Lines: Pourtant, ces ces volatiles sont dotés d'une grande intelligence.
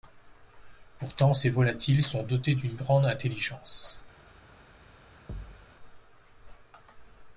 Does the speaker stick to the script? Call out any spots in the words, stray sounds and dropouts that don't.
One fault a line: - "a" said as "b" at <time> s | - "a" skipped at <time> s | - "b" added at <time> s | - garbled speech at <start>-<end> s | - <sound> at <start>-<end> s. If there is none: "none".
- "ces" skipped at 1.5 s
- thud at 5.3-5.7 s